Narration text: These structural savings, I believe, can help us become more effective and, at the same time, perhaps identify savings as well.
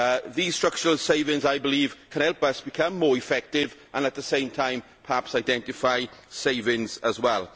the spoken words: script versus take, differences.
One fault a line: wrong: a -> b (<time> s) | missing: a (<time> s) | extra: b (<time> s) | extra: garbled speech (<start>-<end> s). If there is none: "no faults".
no faults